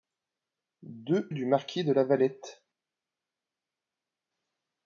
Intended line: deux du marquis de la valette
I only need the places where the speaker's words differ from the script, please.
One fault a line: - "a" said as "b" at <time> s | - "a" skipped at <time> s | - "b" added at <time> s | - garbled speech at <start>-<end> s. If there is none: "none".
none